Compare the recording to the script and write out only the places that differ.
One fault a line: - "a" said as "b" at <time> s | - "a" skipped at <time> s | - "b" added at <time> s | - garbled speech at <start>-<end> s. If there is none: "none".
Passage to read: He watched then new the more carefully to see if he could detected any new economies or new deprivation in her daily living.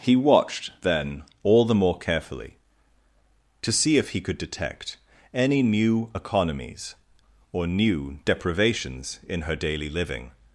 - "new" said as "all" at 1.4 s
- "detected" said as "detect" at 4.4 s
- "deprivation" said as "deprivations" at 8.2 s